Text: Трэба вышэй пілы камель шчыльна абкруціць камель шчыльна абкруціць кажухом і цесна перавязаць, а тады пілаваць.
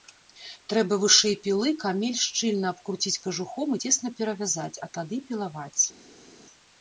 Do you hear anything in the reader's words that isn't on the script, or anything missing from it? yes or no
yes